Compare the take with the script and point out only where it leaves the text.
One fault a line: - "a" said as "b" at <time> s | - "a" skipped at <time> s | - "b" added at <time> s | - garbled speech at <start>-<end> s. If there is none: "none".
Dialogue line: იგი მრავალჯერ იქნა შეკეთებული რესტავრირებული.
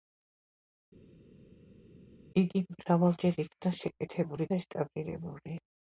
none